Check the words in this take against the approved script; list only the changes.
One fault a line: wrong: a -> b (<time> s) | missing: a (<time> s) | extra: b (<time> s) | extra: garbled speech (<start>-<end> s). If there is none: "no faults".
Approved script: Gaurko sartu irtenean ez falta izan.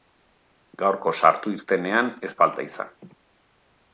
no faults